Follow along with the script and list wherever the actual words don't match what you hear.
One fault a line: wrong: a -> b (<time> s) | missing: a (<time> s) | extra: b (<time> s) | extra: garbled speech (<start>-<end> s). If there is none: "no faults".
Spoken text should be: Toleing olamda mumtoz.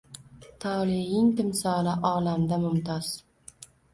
extra: timsoli (1.4 s)